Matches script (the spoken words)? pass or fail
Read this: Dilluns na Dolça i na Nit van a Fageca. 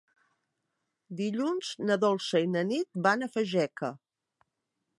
pass